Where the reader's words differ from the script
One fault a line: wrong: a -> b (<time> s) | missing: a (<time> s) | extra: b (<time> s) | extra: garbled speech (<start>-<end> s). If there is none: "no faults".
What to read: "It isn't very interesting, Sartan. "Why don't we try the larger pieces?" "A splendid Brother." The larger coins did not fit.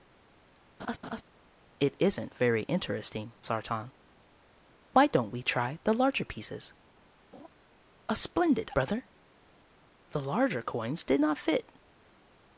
no faults